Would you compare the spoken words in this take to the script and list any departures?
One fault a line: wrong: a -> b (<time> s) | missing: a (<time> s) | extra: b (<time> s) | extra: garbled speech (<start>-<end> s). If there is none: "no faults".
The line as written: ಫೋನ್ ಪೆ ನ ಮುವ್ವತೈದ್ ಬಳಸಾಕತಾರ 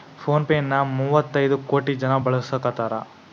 extra: ಕೋಟಿ ಜನ (1.7 s)